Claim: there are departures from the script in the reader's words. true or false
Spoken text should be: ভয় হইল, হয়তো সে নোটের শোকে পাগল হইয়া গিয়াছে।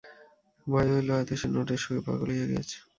false